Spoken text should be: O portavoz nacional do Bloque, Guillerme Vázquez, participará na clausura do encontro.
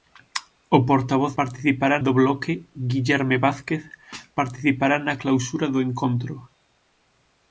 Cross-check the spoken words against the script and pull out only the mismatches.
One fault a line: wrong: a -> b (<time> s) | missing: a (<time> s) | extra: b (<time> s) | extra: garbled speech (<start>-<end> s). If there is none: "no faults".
wrong: nacional -> participará (1.4 s)